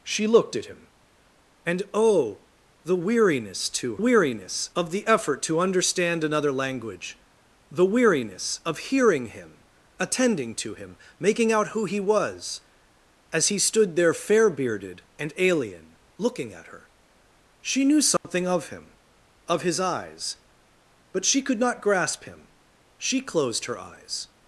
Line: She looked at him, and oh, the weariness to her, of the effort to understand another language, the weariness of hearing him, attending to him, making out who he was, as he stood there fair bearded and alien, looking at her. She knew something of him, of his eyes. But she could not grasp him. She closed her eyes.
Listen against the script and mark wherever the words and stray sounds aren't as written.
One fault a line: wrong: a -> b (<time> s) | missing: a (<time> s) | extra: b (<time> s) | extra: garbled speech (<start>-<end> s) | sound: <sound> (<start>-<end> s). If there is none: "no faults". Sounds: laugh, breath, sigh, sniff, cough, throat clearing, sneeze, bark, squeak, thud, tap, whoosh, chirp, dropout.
wrong: her -> weariness (4.0 s)
sound: dropout (18.2-18.2 s)